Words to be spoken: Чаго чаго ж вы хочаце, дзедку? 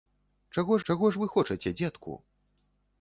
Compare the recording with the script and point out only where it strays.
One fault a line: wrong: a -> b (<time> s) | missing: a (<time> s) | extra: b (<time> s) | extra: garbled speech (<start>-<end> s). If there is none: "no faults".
no faults